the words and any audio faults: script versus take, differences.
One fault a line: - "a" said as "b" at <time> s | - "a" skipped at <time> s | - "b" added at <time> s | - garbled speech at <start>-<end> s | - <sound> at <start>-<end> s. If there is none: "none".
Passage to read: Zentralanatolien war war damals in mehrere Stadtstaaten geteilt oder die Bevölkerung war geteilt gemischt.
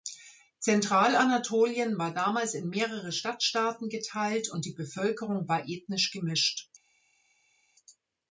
- "war" skipped at 2.1 s
- "oder" said as "und" at 4.5 s
- "geteilt" said as "ethnisch" at 5.7 s